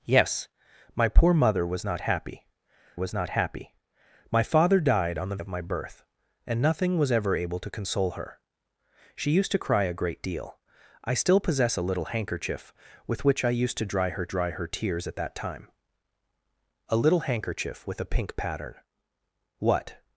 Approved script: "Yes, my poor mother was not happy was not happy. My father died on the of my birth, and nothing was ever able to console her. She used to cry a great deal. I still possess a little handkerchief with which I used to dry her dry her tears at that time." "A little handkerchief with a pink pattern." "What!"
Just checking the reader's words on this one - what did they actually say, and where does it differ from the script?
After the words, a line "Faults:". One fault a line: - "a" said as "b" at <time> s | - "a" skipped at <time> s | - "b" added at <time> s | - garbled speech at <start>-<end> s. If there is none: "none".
"Yes, my poor mother was not happy was not happy. My father died on the of my birth, and nothing was ever able to console her. She used to cry a great deal. I still possess a little handkerchief with which I used to dry her dry her tears at that time." "A little handkerchief with a pink pattern." "What!"
Faults:
none